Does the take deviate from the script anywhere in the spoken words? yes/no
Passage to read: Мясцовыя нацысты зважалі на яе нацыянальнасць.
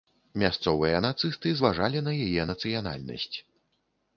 no